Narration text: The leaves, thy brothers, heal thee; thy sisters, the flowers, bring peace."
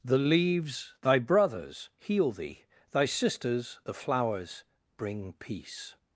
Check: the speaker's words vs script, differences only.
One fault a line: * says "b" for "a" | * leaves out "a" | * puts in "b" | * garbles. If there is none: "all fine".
all fine